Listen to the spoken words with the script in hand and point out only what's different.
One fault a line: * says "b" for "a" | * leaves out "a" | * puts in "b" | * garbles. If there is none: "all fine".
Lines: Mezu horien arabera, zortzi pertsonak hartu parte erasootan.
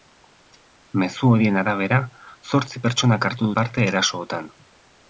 all fine